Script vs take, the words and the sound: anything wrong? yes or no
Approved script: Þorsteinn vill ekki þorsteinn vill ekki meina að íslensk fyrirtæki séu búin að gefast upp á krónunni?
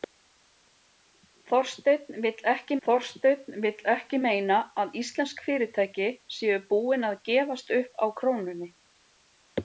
no